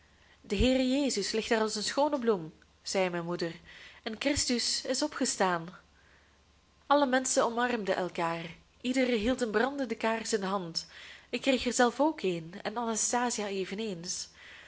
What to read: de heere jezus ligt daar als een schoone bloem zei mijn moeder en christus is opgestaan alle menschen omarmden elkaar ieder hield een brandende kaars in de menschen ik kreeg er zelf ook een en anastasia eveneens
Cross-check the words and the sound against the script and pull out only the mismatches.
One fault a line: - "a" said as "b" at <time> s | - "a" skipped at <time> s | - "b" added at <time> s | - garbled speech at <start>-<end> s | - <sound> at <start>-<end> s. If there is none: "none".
- "menschen" said as "hand" at 10.5 s